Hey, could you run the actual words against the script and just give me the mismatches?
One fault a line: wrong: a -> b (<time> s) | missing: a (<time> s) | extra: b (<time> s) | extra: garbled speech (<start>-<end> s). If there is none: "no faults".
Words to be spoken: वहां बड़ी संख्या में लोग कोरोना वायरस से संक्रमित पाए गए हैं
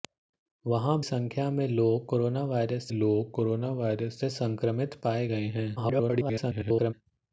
missing: बड़ी (1.0 s)
extra: लोग कोरोना वायरस (2.9 s)
extra: garbled speech (5.8-6.9 s)